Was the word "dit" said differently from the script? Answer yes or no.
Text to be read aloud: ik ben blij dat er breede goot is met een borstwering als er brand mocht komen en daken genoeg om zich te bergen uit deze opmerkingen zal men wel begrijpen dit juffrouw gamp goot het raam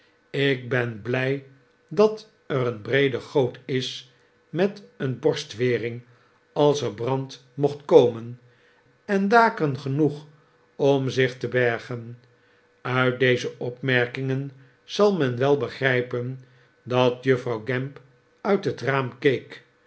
yes